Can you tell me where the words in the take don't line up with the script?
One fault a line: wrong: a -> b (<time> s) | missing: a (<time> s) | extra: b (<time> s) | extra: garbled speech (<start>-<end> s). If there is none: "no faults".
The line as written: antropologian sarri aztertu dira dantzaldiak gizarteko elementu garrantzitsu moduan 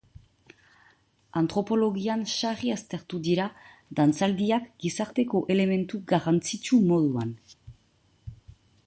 no faults